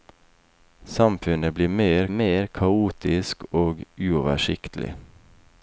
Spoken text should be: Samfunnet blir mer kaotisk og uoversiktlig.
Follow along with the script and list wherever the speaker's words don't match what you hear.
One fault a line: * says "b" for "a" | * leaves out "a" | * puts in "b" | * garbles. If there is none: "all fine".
* puts in "mer"